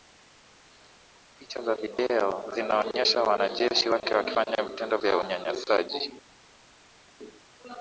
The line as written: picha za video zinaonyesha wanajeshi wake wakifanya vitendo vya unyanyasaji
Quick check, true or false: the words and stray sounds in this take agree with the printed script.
true